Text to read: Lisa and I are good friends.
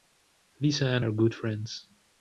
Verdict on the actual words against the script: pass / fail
fail